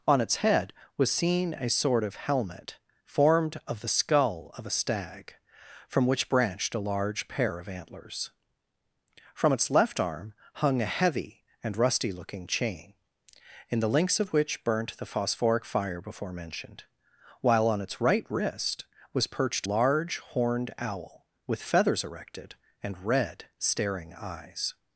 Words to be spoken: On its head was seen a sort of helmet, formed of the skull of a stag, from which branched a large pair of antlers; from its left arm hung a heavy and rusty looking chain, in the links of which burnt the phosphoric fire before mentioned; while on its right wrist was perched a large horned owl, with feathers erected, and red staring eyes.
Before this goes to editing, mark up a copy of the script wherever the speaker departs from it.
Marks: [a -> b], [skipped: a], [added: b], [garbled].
On its head was seen a sort of helmet, formed of the skull of a stag, from which branched a large pair of antlers; from its left arm hung a heavy and rusty looking chain, in the links of which burnt the phosphoric fire before mentioned; while on its right wrist was perched [skipped: a] large horned owl, with feathers erected, and red staring eyes.